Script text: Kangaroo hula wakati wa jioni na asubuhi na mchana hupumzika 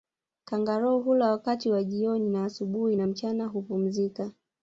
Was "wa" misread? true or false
false